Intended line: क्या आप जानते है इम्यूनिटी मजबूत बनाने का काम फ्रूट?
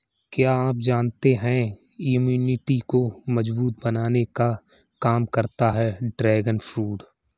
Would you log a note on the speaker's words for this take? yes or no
yes